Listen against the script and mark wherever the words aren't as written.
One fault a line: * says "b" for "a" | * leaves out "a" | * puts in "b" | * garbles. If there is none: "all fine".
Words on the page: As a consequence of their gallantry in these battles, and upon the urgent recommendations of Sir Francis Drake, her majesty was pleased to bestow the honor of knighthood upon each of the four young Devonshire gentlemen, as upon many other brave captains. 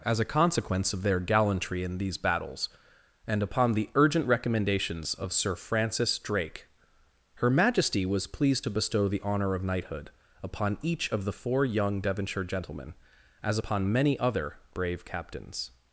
all fine